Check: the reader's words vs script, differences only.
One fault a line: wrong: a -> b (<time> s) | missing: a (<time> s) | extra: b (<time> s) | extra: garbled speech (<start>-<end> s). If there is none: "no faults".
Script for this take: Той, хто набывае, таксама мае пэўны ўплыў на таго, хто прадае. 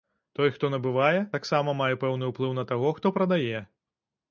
no faults